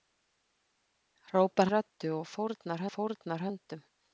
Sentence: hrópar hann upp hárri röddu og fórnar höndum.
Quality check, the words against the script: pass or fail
fail